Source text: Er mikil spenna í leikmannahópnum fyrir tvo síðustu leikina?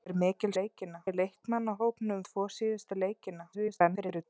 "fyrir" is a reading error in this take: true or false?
true